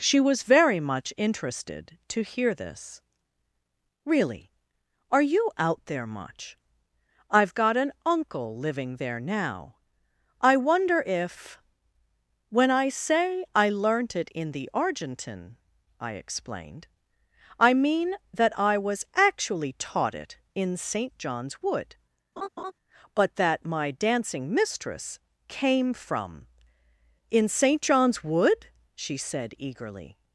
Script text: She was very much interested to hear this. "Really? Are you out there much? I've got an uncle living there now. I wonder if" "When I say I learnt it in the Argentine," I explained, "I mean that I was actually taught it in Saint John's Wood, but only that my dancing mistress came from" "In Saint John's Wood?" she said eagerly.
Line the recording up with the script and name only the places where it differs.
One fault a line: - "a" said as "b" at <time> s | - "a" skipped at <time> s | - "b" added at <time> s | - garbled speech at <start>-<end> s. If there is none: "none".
- "only" skipped at 23.3 s